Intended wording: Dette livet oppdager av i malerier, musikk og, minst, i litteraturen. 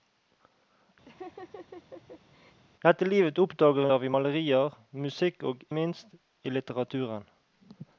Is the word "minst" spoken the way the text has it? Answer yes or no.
yes